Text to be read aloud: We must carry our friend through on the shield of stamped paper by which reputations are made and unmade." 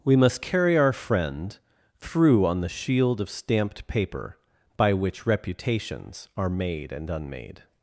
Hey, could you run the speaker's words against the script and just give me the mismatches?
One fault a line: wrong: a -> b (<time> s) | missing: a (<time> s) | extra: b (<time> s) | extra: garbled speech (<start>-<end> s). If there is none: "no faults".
no faults